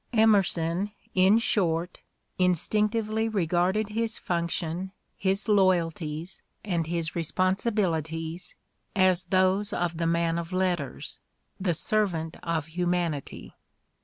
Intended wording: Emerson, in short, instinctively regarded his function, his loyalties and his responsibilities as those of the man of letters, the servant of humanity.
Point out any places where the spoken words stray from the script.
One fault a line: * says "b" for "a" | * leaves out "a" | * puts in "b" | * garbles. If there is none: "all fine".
all fine